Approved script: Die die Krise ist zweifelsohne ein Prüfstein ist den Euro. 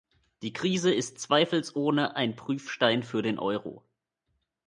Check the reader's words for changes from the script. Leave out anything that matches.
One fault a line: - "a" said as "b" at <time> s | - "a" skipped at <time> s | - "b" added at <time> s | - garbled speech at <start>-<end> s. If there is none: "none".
- "die" skipped at 0.5 s
- "ist" said as "für" at 3.0 s